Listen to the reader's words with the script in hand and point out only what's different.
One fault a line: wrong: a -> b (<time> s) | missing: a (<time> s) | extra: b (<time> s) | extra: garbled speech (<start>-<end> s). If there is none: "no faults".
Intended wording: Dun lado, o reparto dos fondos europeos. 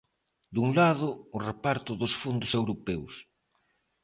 no faults